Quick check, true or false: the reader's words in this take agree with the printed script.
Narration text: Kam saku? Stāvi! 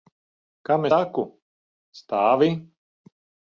true